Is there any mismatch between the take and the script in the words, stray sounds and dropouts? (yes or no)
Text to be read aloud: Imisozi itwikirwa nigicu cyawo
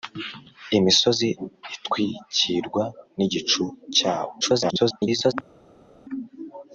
yes